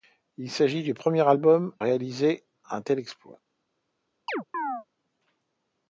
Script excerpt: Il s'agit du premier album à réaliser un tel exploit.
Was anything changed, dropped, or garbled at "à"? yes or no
yes